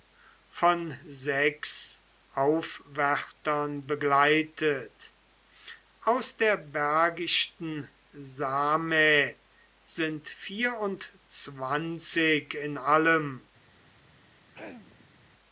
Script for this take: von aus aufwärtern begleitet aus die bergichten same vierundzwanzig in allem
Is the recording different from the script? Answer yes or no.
yes